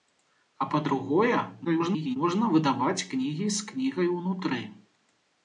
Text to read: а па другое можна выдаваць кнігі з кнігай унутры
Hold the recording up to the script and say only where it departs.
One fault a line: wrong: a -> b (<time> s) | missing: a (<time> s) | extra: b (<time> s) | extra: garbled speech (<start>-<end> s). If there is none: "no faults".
extra: garbled speech (1.6-2.2 s)